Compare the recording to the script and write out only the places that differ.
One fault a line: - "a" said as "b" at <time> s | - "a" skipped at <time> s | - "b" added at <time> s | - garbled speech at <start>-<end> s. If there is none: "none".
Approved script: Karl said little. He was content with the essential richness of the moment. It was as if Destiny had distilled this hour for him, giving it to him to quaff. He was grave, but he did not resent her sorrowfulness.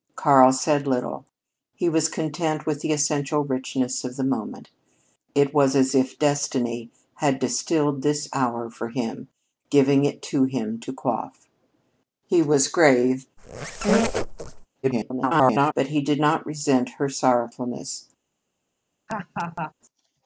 - garbled speech at 14.8-15.7 s